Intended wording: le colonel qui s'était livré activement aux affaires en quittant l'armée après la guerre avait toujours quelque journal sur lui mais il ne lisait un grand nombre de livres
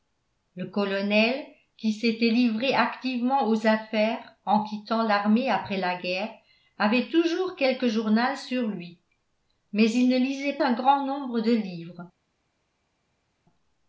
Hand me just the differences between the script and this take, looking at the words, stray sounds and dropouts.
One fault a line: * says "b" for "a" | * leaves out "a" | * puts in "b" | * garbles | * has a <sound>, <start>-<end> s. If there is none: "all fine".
all fine